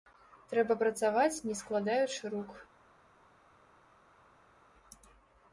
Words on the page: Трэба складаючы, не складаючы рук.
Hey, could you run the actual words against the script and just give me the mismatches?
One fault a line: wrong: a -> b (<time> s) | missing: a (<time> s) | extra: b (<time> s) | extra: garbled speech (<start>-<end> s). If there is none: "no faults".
wrong: складаючы -> працаваць (0.8 s)